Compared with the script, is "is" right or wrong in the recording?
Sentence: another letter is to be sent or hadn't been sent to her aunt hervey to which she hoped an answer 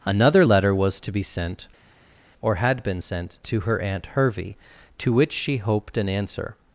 wrong